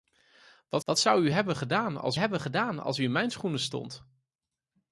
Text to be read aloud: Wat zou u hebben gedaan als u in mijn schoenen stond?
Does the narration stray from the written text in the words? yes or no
yes